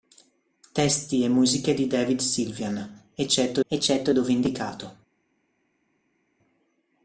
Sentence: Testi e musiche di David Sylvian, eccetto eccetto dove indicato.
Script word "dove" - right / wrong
right